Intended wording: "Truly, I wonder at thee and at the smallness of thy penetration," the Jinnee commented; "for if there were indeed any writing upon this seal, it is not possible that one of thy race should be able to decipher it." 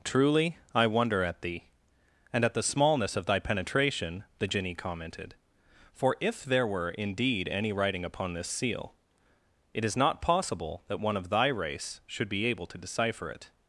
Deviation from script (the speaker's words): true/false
false